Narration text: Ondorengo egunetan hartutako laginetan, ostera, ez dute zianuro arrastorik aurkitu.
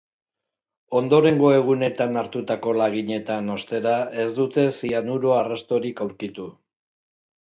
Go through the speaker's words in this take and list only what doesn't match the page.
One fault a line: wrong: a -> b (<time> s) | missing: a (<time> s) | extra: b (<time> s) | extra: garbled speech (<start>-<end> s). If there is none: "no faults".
no faults